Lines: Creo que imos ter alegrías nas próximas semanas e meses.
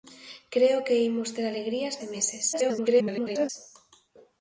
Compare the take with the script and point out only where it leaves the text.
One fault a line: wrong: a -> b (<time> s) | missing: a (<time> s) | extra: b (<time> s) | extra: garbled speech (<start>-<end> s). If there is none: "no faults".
missing: nas próximas semanas (1.9 s)
extra: garbled speech (2.5-3.5 s)